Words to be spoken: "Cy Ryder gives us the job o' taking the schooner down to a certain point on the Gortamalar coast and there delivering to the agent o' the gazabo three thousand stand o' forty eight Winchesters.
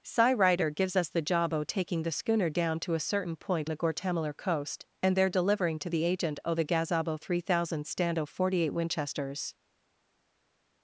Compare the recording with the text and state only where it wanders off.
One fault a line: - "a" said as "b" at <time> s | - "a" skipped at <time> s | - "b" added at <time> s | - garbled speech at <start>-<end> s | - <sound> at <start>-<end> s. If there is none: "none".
- "on" skipped at 3.7 s